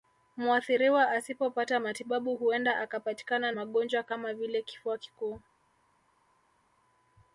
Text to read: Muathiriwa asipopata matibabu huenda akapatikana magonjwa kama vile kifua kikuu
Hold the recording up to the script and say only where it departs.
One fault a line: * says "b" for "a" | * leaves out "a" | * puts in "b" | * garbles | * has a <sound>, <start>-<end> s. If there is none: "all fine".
all fine